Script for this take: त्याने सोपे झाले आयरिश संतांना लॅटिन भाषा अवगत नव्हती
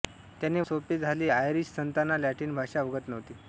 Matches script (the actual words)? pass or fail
pass